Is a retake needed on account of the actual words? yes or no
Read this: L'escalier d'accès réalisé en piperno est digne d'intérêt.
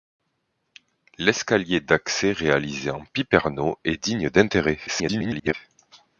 yes